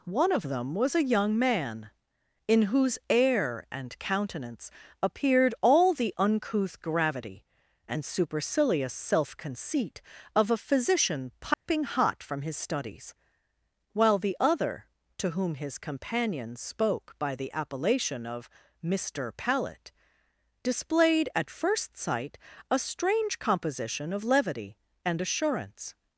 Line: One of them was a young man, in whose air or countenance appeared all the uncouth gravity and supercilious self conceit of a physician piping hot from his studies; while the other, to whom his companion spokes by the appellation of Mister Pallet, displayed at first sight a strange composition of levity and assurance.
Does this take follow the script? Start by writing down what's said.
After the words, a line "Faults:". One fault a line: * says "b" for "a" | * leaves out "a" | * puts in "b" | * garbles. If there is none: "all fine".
One of them was a young man, in whose air and countenance appeared all the uncouth gravity and supercilious self conceit of a physician piping hot from his studies; while the other, to whom his companion spoke by the appellation of Mister Pallet, displayed at first sight a strange composition of levity and assurance.
Faults:
* says "and" for "or"
* says "spoke" for "spokes"